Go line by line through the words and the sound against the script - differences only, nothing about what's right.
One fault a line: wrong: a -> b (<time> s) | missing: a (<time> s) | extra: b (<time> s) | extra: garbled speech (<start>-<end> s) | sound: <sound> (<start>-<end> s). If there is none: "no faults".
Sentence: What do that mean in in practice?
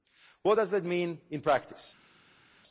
wrong: do -> does (0.5 s)
missing: in (1.4 s)